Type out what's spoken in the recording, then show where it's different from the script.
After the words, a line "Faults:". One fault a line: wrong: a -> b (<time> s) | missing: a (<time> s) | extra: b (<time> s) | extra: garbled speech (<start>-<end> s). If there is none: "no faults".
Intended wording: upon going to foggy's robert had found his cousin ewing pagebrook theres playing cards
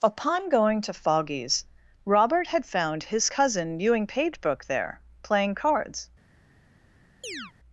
upon going to foggy's robert had found his cousin ewing pagebrook there playing cards
Faults:
wrong: theres -> there (4.7 s)